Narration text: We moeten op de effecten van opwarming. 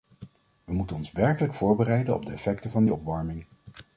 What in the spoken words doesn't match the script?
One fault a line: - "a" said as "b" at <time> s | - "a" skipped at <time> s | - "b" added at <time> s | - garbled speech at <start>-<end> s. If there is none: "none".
- "ons werkelijk voorbereiden" added at 1.0 s
- "die" added at 2.8 s